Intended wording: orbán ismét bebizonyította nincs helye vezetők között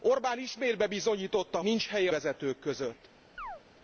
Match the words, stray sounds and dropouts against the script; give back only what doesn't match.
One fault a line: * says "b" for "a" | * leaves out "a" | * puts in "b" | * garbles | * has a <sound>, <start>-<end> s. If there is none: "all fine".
* has a chirp, 3.4-3.6 s